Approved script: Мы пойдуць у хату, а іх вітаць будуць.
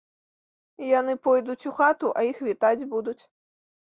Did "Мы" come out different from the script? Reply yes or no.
yes